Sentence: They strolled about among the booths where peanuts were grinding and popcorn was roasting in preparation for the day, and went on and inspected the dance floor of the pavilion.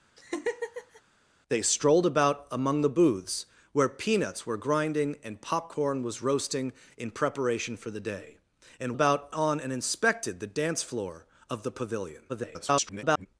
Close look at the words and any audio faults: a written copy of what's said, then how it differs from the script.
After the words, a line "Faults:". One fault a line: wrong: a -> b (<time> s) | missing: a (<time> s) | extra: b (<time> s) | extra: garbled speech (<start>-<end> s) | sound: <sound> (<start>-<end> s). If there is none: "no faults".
They strolled about among the booths where peanuts were grinding and popcorn was roasting in preparation for the day, and about on and inspected the dance floor of the pavilion. [garbled]
Faults:
sound: laugh (0.2-1.0 s)
wrong: went -> about (8.9 s)
extra: garbled speech (12.3-13.3 s)